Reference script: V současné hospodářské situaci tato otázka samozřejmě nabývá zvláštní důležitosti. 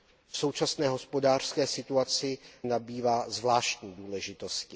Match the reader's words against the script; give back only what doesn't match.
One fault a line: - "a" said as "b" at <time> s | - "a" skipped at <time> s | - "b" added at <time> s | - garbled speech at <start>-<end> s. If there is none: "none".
- "tato otázka samozřejmě" skipped at 2.4 s